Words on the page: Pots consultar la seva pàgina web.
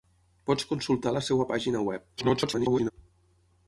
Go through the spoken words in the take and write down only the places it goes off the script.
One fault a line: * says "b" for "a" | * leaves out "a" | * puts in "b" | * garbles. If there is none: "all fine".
* garbles